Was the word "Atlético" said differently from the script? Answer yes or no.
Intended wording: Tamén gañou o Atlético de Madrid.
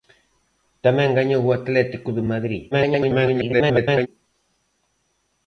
no